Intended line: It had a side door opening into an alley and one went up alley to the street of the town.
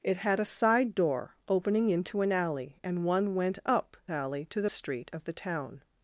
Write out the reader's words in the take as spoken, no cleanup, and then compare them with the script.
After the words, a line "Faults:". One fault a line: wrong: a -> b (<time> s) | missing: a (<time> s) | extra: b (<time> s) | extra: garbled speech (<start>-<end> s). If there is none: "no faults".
It had a side door opening into an alley and one went up alley to the street of the town.
Faults:
no faults